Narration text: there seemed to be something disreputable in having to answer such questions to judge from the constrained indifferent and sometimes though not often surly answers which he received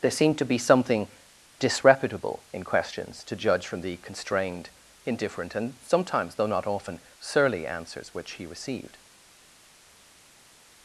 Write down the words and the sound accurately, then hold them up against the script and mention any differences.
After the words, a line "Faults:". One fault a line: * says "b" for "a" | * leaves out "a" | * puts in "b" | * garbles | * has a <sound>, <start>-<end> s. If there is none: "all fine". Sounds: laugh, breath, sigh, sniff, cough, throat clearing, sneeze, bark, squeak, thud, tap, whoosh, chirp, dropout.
there seemed to be something disreputable in questions to judge from the constrained indifferent and sometimes though not often surly answers which he received
Faults:
* leaves out "having to answer such"